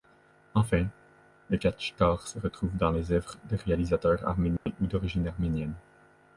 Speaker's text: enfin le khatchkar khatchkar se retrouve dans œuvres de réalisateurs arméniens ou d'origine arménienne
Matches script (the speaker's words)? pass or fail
fail